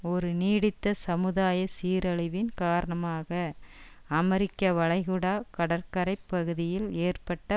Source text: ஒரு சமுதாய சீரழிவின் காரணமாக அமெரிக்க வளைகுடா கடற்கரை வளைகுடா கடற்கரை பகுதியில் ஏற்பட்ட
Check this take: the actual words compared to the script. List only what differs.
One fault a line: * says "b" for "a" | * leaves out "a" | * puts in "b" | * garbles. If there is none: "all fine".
* puts in "நீடித்த"
* leaves out "வளைகுடா கடற்கரை"